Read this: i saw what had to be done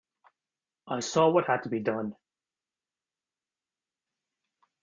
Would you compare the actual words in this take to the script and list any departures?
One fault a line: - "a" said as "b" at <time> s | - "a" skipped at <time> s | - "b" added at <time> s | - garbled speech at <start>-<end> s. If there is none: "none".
none